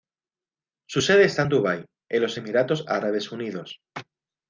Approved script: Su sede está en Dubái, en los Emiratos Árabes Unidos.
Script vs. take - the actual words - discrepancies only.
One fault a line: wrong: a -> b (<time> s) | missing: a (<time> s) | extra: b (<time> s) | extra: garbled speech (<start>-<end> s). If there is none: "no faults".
no faults